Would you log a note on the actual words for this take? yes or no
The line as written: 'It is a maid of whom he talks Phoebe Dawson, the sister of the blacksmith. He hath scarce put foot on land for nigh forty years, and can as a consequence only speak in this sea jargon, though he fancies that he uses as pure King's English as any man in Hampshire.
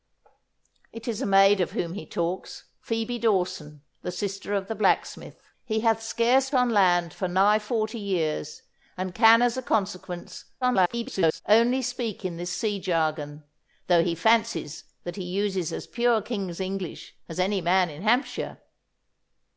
yes